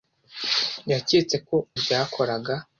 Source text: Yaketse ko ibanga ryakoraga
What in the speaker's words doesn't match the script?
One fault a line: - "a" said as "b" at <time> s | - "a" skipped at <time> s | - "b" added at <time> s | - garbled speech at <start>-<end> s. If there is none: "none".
- "ibanga" skipped at 1.6 s